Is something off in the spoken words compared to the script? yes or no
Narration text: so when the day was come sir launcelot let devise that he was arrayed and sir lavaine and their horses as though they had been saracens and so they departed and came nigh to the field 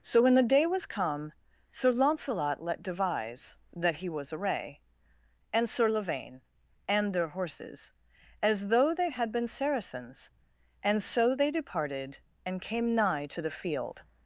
yes